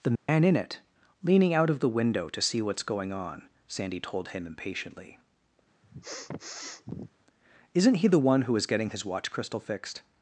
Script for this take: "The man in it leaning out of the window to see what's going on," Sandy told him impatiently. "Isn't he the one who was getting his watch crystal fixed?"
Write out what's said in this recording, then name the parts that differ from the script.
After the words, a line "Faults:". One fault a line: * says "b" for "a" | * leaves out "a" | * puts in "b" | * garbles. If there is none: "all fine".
"The man in it leaning out of the window to see what's going on," Sandy told him impatiently. "Isn't he the one who is getting his watch crystal fixed?"
Faults:
* says "is" for "was"